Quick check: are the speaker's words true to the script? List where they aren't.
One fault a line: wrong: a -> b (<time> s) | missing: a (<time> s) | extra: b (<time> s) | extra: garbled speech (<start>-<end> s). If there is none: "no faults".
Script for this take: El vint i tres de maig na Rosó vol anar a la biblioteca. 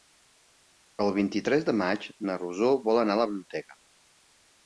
no faults